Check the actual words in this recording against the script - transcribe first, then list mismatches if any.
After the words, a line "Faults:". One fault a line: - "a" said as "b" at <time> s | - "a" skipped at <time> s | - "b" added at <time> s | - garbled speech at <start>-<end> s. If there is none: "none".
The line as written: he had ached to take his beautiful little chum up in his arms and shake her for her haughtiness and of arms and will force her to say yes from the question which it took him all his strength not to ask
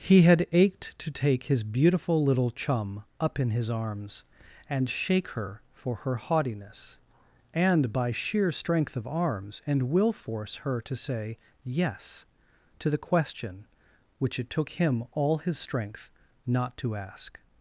he had ached to take his beautiful little chum up in his arms and shake her for her haughtiness and by sheer strength of arms and will force her to say yes to the question which it took him all his strength not to ask
Faults:
- "by sheer strength" added at 7.9 s
- "from" said as "to" at 12.8 s